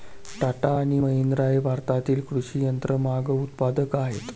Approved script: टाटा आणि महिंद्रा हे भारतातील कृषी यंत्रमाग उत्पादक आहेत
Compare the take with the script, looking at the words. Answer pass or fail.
pass